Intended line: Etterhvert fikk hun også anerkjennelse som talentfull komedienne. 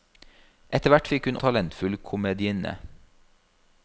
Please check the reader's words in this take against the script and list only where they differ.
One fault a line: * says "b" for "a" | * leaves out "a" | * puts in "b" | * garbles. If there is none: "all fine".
* leaves out "også anerkjennelse som"